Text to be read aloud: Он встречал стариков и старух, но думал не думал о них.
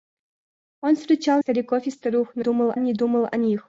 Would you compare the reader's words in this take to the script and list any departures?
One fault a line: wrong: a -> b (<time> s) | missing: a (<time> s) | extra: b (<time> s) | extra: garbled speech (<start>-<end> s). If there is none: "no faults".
no faults